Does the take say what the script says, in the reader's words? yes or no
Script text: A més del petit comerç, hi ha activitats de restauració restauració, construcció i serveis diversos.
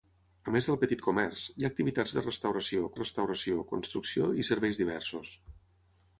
yes